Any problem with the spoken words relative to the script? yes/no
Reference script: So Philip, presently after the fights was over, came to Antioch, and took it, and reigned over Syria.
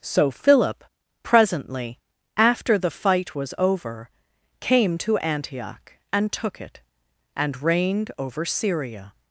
yes